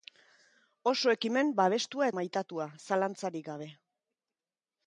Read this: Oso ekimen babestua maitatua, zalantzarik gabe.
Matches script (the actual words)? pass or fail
pass